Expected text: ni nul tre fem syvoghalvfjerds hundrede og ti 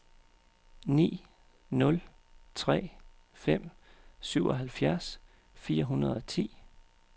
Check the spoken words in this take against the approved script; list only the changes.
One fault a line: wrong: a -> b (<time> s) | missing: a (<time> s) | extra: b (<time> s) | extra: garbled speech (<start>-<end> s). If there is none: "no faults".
extra: fire (5.5 s)